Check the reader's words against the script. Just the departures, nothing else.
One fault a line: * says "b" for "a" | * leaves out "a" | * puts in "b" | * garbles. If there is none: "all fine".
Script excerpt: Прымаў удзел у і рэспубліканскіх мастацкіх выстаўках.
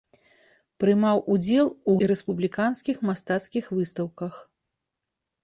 all fine